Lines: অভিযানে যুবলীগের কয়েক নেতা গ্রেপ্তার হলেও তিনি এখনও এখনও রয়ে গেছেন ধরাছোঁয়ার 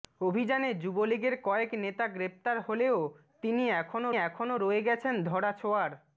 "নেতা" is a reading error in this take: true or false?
false